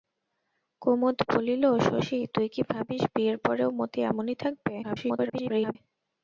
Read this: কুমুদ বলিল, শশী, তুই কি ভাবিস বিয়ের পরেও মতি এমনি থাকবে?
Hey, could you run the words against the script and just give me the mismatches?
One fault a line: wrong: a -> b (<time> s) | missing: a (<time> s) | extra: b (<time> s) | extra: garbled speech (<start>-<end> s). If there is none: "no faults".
extra: garbled speech (4.8-5.8 s)